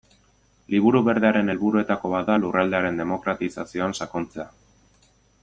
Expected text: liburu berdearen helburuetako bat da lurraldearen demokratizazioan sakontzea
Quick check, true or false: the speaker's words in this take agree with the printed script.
true